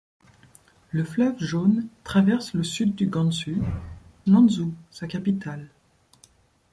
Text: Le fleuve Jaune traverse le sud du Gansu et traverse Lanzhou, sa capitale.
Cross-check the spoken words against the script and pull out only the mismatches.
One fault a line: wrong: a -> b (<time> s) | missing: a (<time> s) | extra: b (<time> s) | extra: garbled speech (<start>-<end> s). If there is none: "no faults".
missing: et traverse (3.6 s)